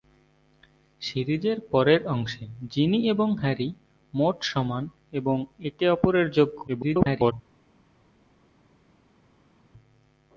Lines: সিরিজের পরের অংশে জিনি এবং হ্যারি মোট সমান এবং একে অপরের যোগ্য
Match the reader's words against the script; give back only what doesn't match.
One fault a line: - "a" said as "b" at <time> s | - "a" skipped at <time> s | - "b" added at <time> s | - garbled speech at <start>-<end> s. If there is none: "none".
- garbled speech at 6.7-7.3 s